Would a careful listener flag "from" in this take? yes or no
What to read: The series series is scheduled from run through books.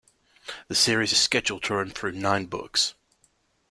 yes